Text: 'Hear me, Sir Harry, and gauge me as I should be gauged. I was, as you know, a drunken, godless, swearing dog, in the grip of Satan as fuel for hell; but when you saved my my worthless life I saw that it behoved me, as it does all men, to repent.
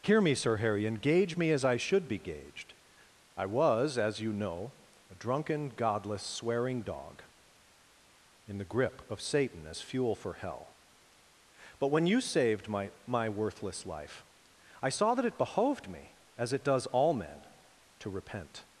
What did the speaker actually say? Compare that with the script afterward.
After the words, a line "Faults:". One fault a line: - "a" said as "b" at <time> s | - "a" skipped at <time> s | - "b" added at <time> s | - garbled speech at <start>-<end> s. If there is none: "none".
'Hear me, Sir Harry, and gauge me as I should be gauged. I was, as you know, a drunken, godless, swearing dog, in the grip of Satan as fuel for hell; but when you saved my my worthless life I saw that it behoved me, as it does all men, to repent.
Faults:
none